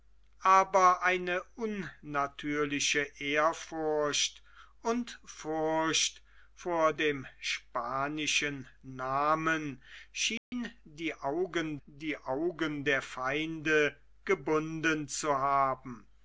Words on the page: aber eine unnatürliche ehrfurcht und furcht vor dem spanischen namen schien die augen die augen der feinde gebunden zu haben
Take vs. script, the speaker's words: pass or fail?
pass